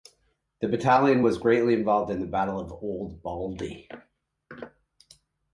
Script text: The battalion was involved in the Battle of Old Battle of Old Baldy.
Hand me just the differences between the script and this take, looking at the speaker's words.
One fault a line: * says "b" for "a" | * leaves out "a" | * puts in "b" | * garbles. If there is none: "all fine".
* puts in "greatly"
* leaves out "Battle of Old"